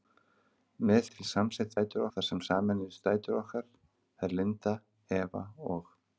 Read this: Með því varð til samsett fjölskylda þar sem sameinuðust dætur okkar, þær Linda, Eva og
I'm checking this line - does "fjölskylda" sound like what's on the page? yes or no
no